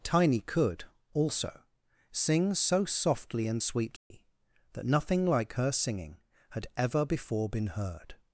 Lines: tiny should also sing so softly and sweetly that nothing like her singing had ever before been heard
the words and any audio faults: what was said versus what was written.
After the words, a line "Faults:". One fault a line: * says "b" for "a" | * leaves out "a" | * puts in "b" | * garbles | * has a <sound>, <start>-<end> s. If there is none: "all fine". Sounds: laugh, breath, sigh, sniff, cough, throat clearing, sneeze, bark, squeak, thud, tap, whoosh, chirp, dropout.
tiny could also sing so softly and sweetly that nothing like her singing had ever before been heard
Faults:
* says "could" for "should"
* has a dropout, 4.0-4.1 s